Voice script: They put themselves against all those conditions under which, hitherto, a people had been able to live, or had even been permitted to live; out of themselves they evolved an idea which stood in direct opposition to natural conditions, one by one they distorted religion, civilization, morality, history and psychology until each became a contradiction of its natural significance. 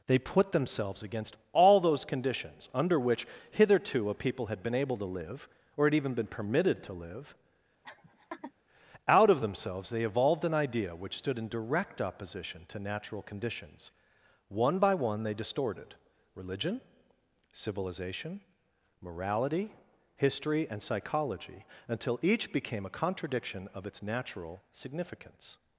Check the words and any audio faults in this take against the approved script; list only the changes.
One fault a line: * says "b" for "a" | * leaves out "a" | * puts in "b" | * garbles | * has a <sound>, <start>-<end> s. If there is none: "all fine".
* has a laugh, 7.8-8.5 s